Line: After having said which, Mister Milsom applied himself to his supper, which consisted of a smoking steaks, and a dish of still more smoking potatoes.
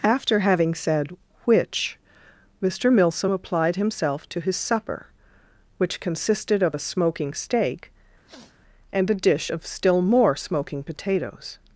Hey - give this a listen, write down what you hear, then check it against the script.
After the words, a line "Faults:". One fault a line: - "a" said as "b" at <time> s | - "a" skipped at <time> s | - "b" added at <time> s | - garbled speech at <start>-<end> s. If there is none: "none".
After having said which, Mister Milsom applied himself to his supper, which consisted of a smoking steak, and a dish of still more smoking potatoes.
Faults:
- "steaks" said as "steak" at 7.3 s